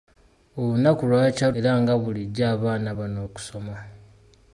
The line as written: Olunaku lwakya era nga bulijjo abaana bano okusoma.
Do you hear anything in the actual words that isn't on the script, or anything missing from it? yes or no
no